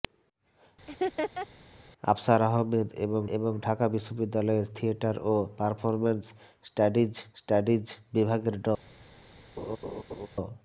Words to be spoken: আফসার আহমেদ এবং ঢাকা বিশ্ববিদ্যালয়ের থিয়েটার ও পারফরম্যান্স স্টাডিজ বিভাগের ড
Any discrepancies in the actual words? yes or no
yes